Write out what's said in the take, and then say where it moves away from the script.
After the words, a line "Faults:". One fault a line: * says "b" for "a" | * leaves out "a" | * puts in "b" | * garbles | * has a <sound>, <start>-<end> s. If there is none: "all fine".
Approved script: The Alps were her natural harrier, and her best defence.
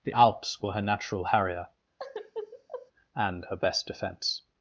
The Alps were her natural harrier, and her best defence.
Faults:
* has a sigh, 2.0-2.9 s